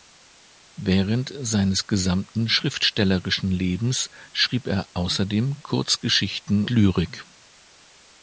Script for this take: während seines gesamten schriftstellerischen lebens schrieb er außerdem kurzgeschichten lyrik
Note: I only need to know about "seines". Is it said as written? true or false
true